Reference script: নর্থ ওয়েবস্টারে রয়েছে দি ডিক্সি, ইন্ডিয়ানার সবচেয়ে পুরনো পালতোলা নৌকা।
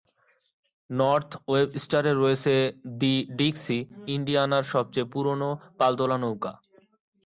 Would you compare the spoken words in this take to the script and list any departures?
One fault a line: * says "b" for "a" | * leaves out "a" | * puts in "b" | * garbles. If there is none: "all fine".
all fine